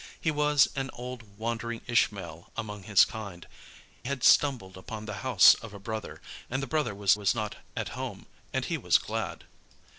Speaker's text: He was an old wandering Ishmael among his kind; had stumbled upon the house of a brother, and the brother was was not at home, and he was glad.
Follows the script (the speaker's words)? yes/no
yes